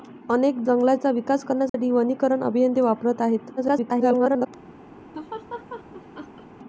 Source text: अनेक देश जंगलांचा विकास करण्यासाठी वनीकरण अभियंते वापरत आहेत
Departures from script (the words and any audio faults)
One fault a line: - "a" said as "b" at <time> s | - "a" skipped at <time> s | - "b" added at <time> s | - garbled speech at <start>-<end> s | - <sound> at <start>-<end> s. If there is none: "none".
- "देश" skipped at 0.6 s
- dropout at 1.7-1.7 s
- garbled speech at 3.6-4.5 s
- laugh at 5.1-6.5 s